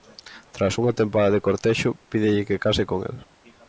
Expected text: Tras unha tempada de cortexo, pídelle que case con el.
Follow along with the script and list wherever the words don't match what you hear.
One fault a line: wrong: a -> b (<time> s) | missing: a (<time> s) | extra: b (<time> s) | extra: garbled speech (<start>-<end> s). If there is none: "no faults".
no faults